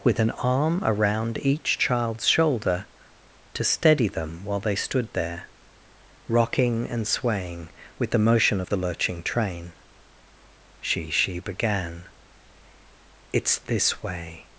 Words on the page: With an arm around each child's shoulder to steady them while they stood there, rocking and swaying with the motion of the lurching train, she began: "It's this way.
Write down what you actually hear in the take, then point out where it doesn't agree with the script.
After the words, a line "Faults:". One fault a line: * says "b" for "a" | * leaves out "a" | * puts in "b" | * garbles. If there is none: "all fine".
With an arm around each child's shoulder to steady them while they stood there, rocking and swaying with the motion of the lurching train, she she began: "It's this way.
Faults:
* puts in "she"